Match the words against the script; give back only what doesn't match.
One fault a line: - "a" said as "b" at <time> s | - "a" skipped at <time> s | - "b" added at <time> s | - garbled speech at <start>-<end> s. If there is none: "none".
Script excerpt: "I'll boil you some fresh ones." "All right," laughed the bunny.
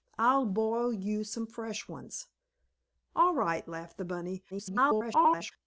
- garbled speech at 4.5-5.5 s